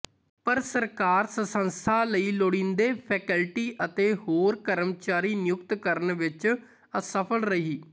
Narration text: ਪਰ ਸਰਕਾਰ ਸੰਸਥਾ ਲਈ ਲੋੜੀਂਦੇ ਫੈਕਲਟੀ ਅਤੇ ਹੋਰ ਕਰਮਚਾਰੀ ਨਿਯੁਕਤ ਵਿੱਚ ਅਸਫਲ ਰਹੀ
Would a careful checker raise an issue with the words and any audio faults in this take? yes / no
yes